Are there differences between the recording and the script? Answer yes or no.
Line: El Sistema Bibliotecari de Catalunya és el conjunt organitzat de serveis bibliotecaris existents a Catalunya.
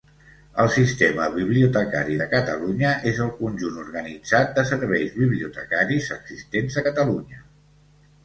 no